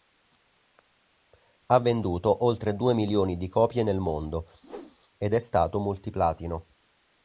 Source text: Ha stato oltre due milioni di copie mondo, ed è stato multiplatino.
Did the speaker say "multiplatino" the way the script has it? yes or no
yes